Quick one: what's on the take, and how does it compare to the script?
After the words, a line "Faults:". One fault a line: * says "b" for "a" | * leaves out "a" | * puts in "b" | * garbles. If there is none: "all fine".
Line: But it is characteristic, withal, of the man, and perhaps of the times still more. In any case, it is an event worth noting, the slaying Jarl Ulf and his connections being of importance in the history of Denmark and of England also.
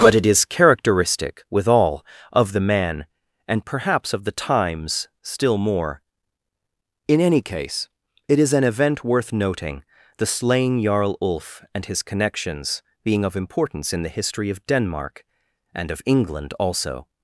But it is characteristic, withal, of the man, and perhaps of the times still more. In any case, it is an event worth noting, the slaying Jarl Ulf and his connections being of importance in the history of Denmark and of England also.
Faults:
all fine